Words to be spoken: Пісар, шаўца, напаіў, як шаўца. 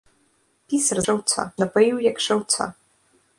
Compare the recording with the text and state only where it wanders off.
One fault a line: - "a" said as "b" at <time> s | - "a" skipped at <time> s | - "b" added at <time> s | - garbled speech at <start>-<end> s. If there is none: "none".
none